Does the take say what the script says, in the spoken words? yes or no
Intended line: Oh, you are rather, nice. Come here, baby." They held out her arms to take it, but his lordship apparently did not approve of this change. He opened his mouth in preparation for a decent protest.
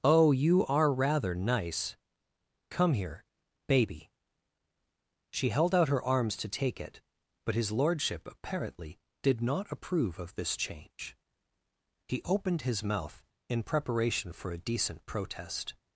no